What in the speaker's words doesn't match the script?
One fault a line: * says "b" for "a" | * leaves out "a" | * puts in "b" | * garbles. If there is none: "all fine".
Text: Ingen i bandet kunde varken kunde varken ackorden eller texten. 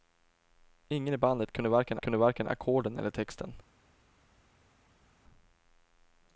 all fine